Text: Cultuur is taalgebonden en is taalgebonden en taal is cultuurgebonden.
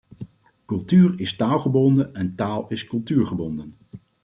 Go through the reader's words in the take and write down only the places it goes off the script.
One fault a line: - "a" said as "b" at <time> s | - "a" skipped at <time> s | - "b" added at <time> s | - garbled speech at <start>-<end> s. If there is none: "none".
- "is taalgebonden en" skipped at 2.4 s